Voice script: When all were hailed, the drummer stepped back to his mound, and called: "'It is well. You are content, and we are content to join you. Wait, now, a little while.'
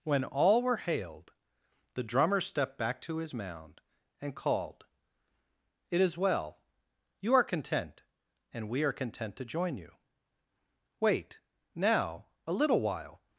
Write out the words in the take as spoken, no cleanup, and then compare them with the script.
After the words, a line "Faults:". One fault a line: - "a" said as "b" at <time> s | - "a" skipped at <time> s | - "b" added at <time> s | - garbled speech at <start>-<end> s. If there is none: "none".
When all were hailed, the drummer stepped back to his mound, and called: "'It is well. You are content, and we are content to join you. Wait, now, a little while.'
Faults:
none